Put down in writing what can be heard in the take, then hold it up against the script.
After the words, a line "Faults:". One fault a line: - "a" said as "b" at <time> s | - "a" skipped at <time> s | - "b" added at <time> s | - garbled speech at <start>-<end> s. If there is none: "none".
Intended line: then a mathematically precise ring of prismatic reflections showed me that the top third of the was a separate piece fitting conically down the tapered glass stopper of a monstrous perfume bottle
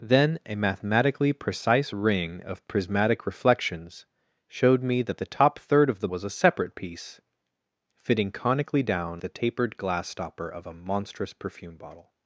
then a mathematically precise ring of prismatic reflections showed me that the top third of the was a separate piece fitting conically down the tapered glass stopper of a monstrous perfume bottle
Faults:
none